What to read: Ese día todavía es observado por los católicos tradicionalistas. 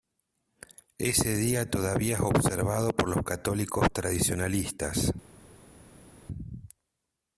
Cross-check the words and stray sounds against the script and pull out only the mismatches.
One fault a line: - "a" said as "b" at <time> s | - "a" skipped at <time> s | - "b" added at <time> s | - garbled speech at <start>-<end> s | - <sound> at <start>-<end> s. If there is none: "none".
none